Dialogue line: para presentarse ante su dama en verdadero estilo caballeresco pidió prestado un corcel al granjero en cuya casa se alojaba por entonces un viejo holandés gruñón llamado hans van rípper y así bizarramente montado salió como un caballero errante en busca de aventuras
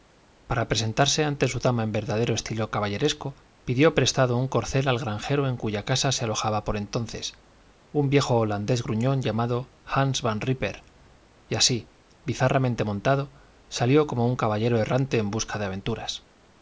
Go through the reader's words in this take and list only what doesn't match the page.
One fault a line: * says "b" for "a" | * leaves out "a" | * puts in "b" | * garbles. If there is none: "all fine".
all fine